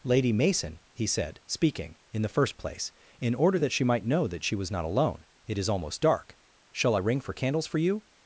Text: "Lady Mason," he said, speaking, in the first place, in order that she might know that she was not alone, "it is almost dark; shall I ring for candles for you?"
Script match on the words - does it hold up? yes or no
yes